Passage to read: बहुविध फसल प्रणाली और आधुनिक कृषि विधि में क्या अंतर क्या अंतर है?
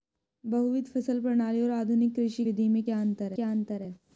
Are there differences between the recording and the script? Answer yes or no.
no